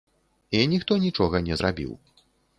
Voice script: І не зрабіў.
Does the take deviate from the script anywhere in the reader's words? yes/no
yes